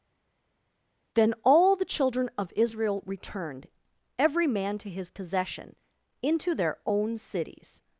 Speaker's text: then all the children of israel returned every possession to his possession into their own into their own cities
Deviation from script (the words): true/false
true